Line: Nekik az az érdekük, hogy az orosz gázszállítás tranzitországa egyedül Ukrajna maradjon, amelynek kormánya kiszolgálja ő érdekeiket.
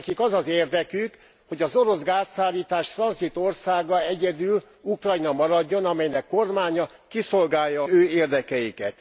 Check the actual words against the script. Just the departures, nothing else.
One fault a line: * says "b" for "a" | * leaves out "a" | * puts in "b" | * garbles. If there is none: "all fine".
all fine